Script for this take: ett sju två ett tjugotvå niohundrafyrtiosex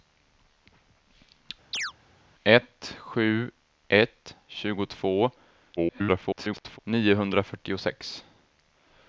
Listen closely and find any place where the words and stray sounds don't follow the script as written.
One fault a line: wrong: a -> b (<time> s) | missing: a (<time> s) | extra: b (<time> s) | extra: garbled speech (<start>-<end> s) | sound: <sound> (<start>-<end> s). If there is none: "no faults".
sound: chirp (1.7-1.9 s)
missing: två (3.5 s)
extra: garbled speech (5.8-6.8 s)